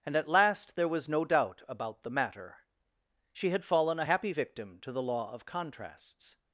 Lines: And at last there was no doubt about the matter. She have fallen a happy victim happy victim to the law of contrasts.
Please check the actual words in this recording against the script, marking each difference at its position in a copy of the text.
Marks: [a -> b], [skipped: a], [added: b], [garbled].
And at last there was no doubt about the matter. She [have -> had] fallen a happy victim [skipped: happy victim] to the law of contrasts.